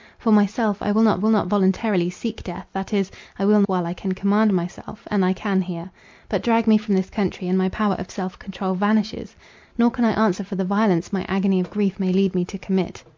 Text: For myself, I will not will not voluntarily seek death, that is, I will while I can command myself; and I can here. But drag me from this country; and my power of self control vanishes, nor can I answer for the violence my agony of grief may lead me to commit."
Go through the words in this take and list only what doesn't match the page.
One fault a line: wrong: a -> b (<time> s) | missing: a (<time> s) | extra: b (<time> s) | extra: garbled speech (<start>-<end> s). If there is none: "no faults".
no faults